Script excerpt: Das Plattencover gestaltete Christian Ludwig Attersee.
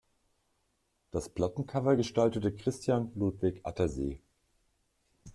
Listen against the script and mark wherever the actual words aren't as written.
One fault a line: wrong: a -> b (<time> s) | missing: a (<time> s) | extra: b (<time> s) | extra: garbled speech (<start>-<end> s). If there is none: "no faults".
no faults